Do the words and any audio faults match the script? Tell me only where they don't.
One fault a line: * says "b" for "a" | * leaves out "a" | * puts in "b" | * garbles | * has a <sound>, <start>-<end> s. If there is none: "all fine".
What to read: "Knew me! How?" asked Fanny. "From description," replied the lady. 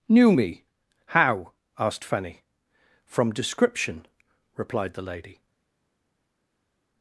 all fine